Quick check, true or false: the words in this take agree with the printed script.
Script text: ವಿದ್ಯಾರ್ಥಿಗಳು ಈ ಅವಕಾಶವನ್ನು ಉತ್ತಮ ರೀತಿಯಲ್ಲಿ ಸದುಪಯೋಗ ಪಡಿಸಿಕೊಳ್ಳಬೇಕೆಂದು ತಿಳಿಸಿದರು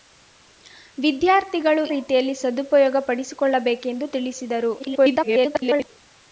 false